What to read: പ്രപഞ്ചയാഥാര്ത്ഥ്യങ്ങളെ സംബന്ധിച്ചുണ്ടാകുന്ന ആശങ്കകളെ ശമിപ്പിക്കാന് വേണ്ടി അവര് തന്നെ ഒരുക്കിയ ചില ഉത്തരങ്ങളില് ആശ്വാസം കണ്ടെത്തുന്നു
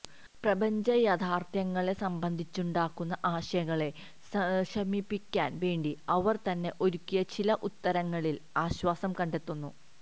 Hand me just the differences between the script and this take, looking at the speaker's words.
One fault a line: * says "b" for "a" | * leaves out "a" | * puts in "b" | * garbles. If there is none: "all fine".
all fine